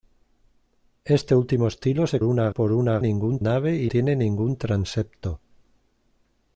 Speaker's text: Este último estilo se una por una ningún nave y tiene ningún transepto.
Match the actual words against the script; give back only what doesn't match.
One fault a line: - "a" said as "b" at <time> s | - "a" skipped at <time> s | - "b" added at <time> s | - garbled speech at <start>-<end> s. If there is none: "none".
none